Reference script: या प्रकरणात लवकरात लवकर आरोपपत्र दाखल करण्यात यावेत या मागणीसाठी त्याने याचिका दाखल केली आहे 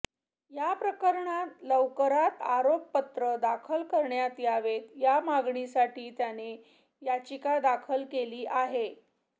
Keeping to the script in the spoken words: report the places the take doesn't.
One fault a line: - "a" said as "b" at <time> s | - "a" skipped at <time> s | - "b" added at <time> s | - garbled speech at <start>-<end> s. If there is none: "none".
- "लवकर" skipped at 2.4 s